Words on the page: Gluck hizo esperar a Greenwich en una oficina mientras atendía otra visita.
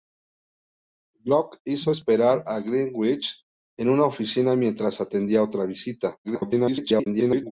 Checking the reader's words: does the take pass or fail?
fail